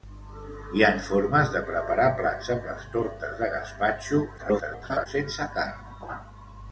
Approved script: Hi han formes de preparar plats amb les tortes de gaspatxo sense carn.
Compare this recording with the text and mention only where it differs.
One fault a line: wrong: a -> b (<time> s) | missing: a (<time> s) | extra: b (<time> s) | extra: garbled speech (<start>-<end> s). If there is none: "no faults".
extra: garbled speech (4.4-5.1 s)